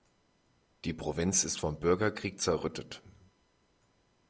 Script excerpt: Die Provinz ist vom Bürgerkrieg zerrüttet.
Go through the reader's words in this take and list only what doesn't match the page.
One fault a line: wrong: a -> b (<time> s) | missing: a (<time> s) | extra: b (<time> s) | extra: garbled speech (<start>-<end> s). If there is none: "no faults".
no faults